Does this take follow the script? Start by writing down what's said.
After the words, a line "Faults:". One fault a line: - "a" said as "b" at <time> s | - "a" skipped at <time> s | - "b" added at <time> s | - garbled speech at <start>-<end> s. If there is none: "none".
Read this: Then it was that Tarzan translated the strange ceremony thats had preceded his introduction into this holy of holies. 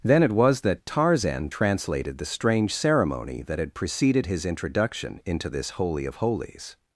Then it was that Tarzan translated the strange ceremony that had preceded his introduction into this holy of holies.
Faults:
- "thats" said as "that" at 3.4 s